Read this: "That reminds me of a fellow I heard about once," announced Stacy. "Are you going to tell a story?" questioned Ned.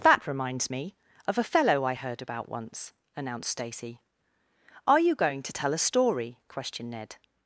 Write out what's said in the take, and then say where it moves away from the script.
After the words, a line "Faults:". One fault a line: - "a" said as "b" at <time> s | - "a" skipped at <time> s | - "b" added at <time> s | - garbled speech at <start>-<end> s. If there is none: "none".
"That reminds me of a fellow I heard about once," announced Stacy. "Are you going to tell a story?" questioned Ned.
Faults:
none